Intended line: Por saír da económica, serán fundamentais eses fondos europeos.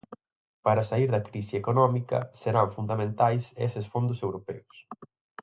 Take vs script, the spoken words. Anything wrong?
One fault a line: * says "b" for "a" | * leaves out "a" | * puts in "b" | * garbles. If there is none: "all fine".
* says "Para" for "Por"
* puts in "crise"